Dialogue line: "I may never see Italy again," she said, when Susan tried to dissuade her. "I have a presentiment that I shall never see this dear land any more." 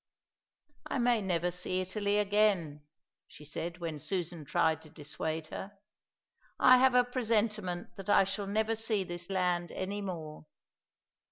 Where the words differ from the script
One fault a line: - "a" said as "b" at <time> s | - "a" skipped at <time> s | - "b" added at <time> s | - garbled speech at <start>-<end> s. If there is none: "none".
- "dear" skipped at 9.3 s